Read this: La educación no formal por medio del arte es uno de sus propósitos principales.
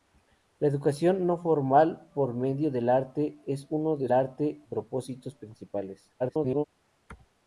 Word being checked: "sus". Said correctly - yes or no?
no